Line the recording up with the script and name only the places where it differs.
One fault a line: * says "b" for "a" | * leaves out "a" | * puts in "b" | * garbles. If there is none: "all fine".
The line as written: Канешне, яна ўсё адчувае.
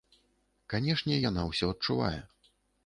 all fine